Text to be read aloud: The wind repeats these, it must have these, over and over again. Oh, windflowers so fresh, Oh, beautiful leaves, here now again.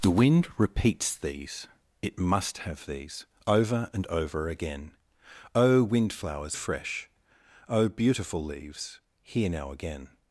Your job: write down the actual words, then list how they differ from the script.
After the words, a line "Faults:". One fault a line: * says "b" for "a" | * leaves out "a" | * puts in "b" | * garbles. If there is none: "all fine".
The wind repeats these, it must have these, over and over again. Oh, windflowers fresh, Oh, beautiful leaves, here now again.
Faults:
* leaves out "so"